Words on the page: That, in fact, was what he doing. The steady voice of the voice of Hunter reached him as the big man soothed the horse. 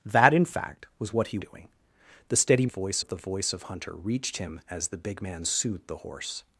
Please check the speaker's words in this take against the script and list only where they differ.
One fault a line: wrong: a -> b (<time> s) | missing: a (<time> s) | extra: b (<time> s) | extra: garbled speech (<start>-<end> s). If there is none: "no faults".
no faults